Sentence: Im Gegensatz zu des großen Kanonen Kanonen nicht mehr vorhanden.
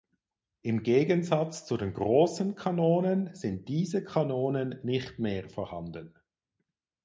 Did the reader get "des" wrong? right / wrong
wrong